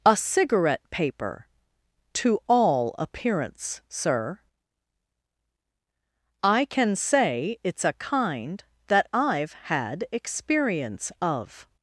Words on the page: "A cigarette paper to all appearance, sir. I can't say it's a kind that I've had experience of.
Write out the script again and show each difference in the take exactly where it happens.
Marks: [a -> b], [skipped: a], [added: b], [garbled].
"A cigarette paper to all appearance, sir. I [can't -> can] say it's a kind that I've had experience of.